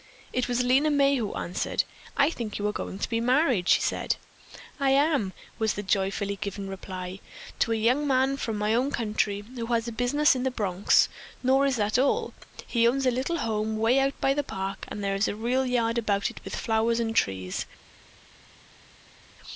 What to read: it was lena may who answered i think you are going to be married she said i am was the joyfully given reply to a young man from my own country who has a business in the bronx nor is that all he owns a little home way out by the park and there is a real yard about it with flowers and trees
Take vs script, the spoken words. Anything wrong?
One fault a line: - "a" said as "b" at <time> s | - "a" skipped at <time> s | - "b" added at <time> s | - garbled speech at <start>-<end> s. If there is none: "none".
none